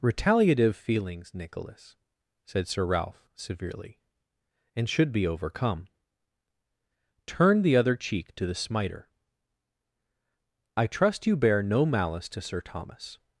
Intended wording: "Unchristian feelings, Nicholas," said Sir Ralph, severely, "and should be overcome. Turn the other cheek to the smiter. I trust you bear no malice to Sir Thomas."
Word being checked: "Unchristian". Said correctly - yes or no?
no